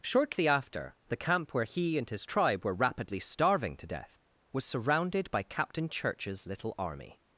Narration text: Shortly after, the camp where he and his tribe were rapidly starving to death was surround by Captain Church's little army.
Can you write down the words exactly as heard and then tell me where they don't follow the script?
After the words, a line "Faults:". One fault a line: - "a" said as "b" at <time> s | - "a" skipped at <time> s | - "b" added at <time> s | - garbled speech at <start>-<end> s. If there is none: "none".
Shortly after, the camp where he and his tribe were rapidly starving to death was surrounded by Captain Church's little army.
Faults:
- "surround" said as "surrounded" at 4.6 s